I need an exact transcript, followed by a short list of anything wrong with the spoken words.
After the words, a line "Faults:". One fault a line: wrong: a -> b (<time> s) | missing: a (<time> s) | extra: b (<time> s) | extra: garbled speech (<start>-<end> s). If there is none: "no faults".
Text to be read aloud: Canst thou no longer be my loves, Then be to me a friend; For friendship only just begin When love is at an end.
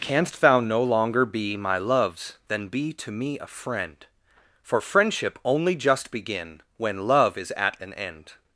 Canst thou no longer be my loves, Then be to me a friend; For friendship only just begin When love is at an end.
Faults:
no faults